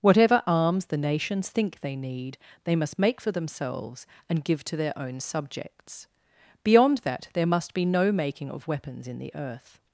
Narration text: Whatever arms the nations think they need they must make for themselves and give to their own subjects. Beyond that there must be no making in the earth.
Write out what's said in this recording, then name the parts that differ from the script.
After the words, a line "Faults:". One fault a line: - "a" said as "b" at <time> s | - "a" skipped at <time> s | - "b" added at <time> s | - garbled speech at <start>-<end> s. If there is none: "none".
Whatever arms the nations think they need they must make for themselves and give to their own subjects. Beyond that there must be no making of weapons in the earth.
Faults:
- "of weapons" added at 8.5 s